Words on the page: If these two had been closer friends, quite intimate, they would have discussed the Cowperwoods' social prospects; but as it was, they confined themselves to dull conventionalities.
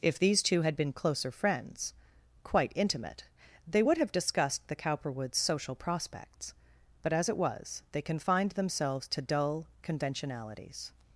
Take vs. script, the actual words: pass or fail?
pass